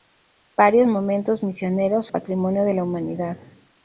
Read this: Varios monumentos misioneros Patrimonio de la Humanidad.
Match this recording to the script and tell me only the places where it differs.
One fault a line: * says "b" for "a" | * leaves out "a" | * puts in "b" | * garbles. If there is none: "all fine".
all fine